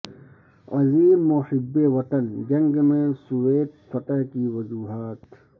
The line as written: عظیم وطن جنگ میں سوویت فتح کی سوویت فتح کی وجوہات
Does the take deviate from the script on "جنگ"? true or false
false